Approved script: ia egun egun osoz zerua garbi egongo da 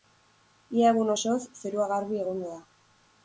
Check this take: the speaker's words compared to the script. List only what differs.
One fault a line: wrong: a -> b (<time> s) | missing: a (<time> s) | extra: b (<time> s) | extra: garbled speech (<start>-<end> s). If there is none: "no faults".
missing: egun (1.1 s)